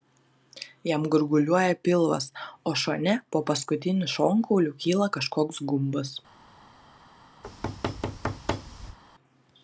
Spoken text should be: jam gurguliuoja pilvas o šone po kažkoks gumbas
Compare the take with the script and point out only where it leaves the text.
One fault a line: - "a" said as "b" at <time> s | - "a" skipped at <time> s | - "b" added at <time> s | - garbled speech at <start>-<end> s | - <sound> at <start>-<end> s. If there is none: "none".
- "paskutiniu šonkauliu kyla" added at 3.5 s
- thud at 7.4-9.0 s